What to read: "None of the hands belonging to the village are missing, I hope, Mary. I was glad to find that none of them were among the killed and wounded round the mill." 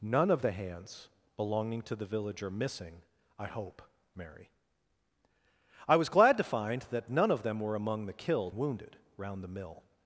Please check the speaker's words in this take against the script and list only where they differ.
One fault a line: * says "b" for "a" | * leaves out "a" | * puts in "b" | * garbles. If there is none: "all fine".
* leaves out "and"